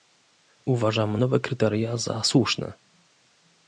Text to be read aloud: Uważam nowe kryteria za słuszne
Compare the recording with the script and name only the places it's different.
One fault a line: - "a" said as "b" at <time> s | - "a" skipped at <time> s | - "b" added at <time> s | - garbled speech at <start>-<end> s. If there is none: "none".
none